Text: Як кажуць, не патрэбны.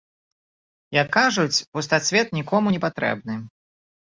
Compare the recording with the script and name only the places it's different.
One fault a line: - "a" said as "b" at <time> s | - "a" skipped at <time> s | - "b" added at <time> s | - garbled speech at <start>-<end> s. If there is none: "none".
- "пустацвет нікому" added at 1.8 s